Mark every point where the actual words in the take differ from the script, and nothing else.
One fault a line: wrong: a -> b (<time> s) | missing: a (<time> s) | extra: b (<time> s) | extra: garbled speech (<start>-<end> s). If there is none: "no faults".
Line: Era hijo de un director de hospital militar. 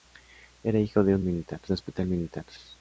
wrong: director -> militar (1.2 s)